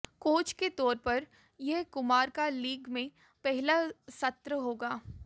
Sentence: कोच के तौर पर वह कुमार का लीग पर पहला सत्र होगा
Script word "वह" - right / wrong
wrong